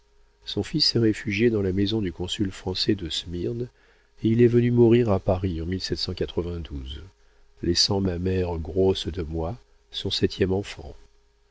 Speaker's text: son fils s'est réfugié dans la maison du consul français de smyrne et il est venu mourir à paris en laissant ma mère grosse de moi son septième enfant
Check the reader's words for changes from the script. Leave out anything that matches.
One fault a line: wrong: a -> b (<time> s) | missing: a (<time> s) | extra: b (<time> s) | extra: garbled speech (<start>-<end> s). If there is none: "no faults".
no faults